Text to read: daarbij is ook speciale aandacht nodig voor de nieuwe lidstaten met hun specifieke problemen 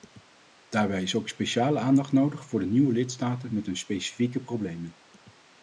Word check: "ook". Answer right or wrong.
right